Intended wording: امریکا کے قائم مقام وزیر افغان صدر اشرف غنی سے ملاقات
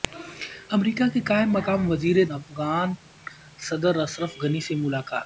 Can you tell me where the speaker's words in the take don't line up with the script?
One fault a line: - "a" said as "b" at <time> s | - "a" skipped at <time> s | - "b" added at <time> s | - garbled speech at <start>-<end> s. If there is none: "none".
none